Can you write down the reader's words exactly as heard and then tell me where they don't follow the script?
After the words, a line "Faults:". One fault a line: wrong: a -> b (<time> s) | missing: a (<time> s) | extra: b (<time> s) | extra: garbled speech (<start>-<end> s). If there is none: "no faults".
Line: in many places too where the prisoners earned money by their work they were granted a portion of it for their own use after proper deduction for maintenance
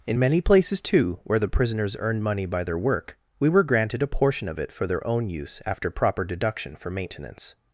in many places too where the prisoners earned money by their work we were granted a portion of it for their own use after proper deduction for maintenance
Faults:
wrong: they -> we (3.4 s)